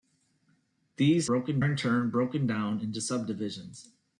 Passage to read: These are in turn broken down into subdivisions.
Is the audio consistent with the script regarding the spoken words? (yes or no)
no